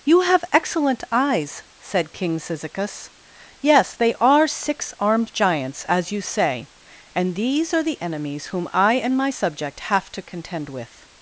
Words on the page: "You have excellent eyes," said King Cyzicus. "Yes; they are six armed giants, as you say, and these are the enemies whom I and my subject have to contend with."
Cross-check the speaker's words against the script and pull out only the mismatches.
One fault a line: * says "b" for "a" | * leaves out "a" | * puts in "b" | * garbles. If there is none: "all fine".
all fine